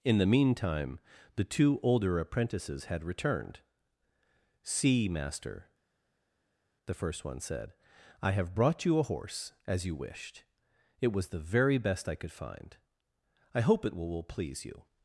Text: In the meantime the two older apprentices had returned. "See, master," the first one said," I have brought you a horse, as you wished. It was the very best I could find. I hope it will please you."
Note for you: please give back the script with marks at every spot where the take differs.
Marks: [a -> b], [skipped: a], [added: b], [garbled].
In the meantime the two older apprentices had returned. "See, master," the first one said," I have brought you a horse, as you wished. It was the very best I could find. I hope it will [added: will] please you."